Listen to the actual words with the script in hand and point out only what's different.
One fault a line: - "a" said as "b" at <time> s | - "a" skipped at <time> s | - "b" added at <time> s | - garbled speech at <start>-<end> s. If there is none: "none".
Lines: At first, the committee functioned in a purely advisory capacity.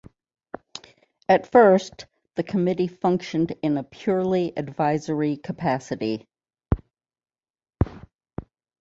none